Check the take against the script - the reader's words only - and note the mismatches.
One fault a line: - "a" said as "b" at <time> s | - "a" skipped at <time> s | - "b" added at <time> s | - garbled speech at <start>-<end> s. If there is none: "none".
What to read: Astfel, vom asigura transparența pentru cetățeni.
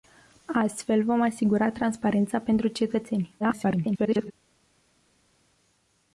- garbled speech at 3.4-4.3 s